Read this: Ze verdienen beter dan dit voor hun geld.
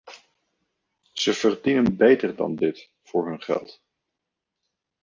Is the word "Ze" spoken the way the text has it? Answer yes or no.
yes